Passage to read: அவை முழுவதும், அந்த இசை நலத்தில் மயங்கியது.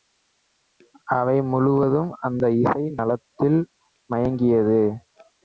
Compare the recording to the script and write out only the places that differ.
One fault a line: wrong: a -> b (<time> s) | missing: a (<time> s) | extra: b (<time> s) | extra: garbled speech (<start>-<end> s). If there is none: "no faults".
no faults